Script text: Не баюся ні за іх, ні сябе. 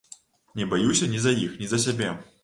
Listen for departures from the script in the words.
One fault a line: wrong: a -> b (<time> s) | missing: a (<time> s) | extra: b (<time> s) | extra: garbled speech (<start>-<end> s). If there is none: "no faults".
extra: за (1.7 s)